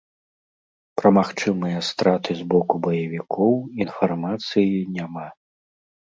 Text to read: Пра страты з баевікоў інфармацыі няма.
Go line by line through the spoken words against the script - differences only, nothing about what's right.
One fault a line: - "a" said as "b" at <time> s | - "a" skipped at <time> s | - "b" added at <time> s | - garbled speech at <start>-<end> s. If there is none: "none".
- "магчымыя" added at 1.2 s
- "боку" added at 2.5 s